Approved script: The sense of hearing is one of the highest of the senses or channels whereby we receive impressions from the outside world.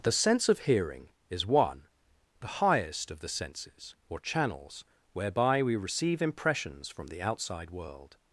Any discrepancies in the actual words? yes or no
yes